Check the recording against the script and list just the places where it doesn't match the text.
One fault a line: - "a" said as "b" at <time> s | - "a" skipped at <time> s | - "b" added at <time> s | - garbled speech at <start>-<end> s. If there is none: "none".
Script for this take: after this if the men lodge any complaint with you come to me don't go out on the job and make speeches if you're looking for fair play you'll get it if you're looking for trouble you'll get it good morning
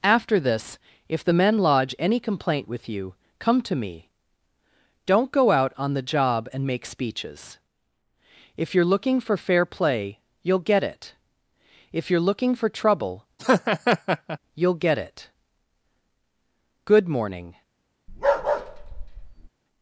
none